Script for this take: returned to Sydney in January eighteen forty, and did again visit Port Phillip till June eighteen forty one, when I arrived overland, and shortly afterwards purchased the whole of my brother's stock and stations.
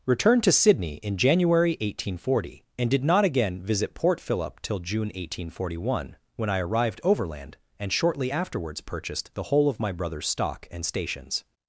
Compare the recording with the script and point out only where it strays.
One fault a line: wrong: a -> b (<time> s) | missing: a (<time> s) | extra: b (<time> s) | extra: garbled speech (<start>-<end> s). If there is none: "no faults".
extra: not (3.0 s)